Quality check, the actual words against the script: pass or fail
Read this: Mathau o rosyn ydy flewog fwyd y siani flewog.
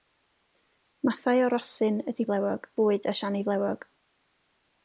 pass